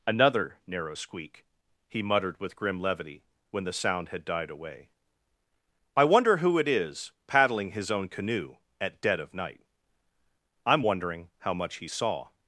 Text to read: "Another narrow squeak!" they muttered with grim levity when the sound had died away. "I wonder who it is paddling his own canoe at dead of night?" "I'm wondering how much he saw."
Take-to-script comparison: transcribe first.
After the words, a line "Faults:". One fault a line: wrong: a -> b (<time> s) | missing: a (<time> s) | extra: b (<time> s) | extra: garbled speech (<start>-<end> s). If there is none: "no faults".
"Another narrow squeak!" he muttered with grim levity when the sound had died away. "I wonder who it is paddling his own canoe at dead of night?" "I'm wondering how much he saw."
Faults:
wrong: they -> he (1.9 s)